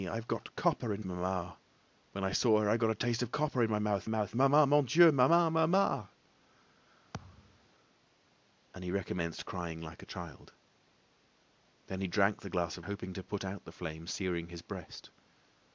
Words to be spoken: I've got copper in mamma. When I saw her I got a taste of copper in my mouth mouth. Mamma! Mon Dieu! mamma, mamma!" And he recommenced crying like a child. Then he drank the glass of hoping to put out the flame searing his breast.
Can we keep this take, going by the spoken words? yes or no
yes